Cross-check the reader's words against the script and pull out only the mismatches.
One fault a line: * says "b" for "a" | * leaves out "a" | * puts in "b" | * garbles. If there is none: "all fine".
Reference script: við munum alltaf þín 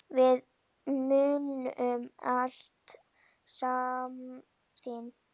all fine